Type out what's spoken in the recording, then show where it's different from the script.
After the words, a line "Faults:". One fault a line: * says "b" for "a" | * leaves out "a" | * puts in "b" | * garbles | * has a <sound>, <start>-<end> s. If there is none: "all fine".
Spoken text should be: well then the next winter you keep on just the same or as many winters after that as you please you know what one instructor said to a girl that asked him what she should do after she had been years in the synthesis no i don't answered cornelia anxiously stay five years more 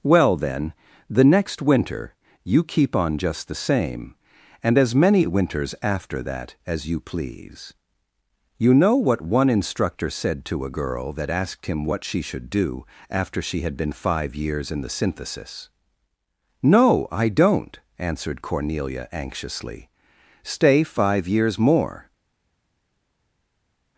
well then the next winter you keep on just the same and as many winters after that as you please you know what one instructor said to a girl that asked him what she should do after she had been five years in the synthesis no i don't answered cornelia anxiously stay five years more
Faults:
* says "and" for "or"
* puts in "five"